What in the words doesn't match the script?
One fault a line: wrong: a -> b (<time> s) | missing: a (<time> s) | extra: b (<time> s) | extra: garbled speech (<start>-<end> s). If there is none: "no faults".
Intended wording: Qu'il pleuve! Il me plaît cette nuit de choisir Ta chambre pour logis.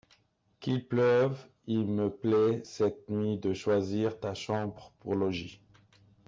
no faults